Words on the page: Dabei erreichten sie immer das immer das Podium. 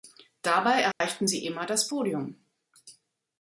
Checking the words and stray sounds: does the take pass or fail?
fail